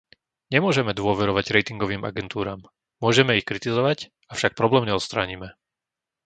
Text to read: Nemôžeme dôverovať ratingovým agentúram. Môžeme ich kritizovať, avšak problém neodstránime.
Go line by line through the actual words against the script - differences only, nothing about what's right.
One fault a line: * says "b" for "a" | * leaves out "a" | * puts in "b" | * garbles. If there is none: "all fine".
all fine